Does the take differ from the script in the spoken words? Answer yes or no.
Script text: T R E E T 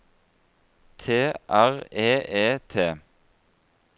no